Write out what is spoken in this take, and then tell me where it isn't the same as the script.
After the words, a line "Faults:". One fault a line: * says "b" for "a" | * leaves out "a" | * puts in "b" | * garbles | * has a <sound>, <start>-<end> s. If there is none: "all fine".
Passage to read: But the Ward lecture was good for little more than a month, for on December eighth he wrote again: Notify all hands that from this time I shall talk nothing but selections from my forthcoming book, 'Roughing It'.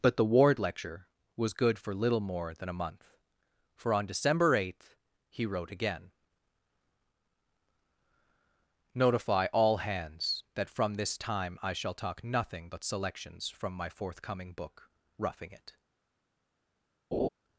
But the Ward lecture was good for little more than a month, for on December eighth he wrote again: Notify all hands that from this time I shall talk nothing but selections from my forthcoming book, 'Roughing It'.
Faults:
* has a laugh, 17.1-17.3 s